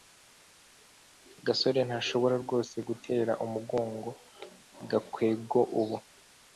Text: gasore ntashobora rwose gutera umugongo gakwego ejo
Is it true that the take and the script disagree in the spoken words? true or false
true